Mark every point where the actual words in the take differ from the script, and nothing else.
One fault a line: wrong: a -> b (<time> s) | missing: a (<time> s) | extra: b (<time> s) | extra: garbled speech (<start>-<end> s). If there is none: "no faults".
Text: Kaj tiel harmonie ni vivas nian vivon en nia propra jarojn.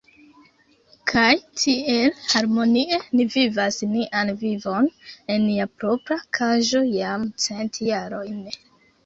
extra: kaĝo jam cent (6.4 s)